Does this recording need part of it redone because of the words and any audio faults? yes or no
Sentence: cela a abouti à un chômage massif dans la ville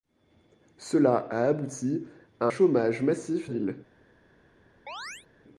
yes